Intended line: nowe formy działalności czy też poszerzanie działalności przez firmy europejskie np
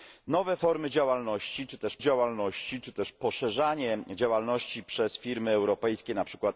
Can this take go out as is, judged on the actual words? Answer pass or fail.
fail